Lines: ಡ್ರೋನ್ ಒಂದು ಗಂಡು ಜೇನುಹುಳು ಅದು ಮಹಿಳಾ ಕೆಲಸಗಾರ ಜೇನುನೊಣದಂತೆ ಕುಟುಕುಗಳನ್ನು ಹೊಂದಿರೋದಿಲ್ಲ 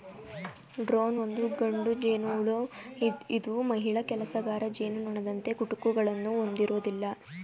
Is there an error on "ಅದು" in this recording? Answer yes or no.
yes